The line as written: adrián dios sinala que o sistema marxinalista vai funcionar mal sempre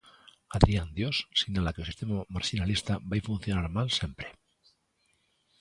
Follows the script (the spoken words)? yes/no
yes